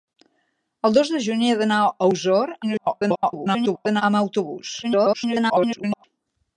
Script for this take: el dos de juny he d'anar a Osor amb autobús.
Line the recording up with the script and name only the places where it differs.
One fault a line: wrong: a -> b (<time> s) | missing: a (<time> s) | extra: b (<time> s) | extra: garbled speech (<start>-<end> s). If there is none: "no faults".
extra: garbled speech (2.6-4.0 s)
extra: garbled speech (4.8-6.0 s)